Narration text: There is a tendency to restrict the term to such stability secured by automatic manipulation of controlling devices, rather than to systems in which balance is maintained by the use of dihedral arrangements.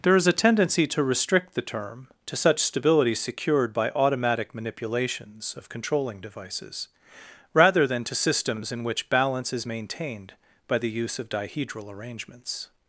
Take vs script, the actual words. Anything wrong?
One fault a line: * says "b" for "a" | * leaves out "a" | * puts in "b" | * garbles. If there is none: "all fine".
* says "manipulations" for "manipulation"